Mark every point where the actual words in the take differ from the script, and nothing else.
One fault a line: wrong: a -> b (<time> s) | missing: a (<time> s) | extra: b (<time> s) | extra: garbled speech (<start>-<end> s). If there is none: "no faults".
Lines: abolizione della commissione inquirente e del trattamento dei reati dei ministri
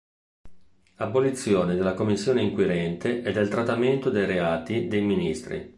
no faults